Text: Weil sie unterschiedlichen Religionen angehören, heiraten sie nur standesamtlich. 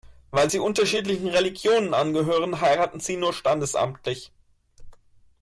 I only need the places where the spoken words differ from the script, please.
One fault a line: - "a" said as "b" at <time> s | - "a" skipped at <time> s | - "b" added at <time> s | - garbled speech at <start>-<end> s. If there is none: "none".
none